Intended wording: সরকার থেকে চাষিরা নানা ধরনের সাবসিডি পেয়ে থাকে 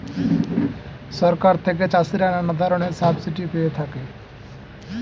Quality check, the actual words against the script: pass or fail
pass